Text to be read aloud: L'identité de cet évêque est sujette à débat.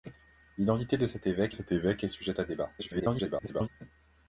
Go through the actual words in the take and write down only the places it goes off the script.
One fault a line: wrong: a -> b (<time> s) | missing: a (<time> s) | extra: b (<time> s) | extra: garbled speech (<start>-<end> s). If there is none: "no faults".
extra: cet évêque (1.5 s)
extra: garbled speech (2.8-3.7 s)